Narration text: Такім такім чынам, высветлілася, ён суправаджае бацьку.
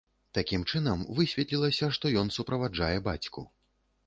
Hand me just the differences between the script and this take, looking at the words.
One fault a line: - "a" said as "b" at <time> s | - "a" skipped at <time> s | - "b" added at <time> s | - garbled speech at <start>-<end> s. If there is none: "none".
- "такім" skipped at 0.6 s
- "што" added at 2.0 s